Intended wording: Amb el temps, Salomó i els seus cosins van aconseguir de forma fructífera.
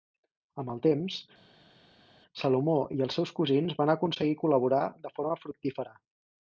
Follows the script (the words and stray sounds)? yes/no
no